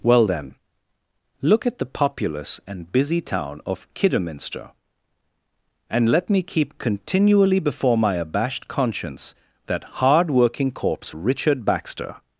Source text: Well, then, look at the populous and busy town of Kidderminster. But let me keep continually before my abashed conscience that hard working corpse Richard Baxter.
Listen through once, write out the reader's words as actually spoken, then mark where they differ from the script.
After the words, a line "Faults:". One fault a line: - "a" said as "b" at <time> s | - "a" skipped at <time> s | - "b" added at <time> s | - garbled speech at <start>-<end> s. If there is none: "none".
Well, then, look at the populous and busy town of Kidderminster. And let me keep continually before my abashed conscience that hard working corpse Richard Baxter.
Faults:
- "But" said as "And" at 5.9 s